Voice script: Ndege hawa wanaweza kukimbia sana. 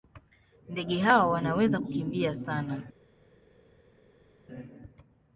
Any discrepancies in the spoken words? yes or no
no